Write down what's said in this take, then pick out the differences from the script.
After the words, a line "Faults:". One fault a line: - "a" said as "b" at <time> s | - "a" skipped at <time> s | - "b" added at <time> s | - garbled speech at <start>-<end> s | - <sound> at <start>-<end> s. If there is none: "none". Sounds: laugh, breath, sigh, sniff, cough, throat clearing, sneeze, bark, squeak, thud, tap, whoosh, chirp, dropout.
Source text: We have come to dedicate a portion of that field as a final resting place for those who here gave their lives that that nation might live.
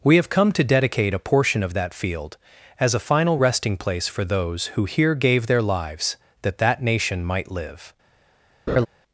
We have come to dedicate a portion of that field as a final resting place for those who here gave their lives that that nation might live.
Faults:
- laugh at 8.7-8.9 s